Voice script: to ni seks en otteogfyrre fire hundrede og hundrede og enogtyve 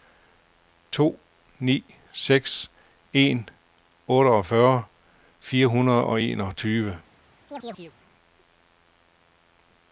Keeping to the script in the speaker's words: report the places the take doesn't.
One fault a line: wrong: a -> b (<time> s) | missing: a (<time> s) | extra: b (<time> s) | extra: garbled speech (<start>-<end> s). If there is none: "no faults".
missing: hundrede og (6.2 s)